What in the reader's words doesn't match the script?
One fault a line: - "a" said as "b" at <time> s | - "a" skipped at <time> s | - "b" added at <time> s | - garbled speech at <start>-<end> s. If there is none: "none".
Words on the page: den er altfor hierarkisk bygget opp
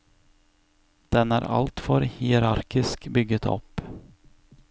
none